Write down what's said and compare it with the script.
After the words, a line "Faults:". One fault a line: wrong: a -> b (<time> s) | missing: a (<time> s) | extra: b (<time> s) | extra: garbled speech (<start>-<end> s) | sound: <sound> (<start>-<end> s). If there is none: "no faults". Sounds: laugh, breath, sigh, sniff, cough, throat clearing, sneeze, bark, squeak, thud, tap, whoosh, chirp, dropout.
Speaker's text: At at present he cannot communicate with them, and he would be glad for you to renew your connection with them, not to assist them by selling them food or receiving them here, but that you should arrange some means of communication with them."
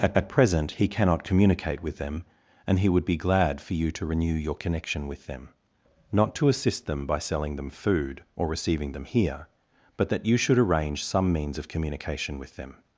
At at present he cannot communicate with them, and he would be glad for you to renew your connection with them, not to assist them by selling them food or receiving them here, but that you should arrange some means of communication with them."
Faults:
no faults